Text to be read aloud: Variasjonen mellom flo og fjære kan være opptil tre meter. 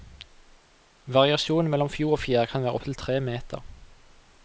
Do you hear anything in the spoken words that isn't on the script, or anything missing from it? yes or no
no